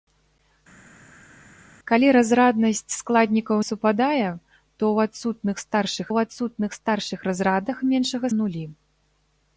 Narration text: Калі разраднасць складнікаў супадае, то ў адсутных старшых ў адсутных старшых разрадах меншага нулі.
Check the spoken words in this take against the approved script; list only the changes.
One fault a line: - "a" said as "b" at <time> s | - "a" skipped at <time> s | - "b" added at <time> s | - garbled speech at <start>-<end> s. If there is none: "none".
none